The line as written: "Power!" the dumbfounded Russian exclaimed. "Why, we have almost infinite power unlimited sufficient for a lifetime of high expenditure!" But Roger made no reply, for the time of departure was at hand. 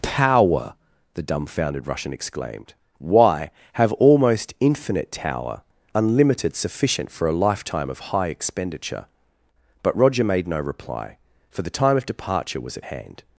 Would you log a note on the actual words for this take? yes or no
yes